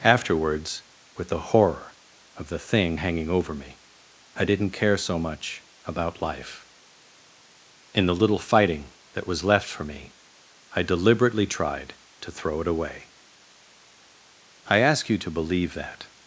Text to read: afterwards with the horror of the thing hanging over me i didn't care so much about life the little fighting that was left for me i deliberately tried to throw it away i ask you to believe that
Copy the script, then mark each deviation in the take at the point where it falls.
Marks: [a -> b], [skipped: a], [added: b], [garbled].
afterwards with the horror of the thing hanging over me i didn't care so much about life [added: in] the little fighting that was left for me i deliberately tried to throw it away i ask you to believe that